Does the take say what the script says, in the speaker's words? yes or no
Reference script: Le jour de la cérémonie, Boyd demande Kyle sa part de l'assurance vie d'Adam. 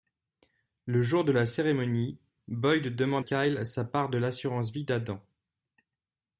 yes